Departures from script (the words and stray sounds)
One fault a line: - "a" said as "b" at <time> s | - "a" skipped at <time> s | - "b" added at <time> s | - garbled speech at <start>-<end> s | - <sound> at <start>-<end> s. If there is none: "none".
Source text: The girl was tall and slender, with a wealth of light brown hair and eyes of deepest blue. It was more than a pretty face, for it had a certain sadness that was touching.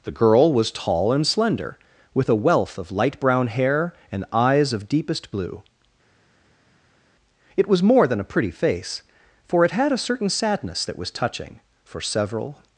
- "For several" added at 11.8 s